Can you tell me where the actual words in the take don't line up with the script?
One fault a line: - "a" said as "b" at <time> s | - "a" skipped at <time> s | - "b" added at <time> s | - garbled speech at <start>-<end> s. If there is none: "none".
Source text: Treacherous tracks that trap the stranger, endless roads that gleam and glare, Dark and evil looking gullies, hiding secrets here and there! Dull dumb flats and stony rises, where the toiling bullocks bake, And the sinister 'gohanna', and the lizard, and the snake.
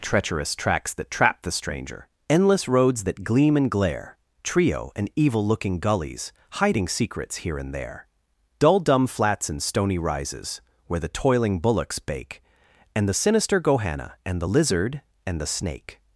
- "Dark" said as "Trio" at 4.4 s